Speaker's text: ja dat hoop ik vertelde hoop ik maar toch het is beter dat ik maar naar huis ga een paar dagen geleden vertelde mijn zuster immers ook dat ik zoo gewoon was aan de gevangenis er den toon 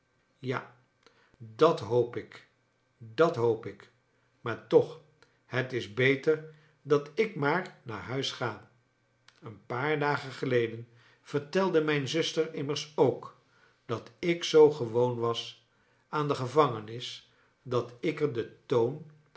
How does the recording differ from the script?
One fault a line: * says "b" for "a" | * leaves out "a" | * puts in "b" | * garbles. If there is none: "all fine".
* says "dat" for "vertelde"
* puts in "dat ik"